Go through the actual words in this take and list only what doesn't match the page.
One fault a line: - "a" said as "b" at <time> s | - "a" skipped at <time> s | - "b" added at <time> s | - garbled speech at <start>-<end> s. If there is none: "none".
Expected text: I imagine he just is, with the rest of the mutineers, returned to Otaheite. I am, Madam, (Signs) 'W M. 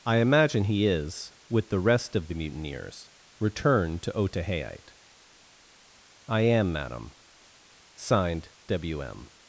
- "just" skipped at 0.9 s
- "Signs" said as "Signed" at 8.0 s